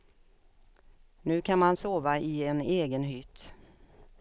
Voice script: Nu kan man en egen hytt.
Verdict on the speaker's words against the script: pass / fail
fail